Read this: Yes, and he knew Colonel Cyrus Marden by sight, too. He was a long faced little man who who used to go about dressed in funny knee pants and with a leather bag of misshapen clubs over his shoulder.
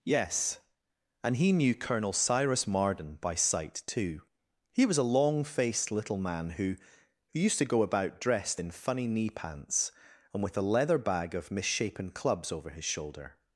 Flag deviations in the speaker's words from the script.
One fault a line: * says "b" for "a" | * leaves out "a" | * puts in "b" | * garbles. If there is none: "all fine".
all fine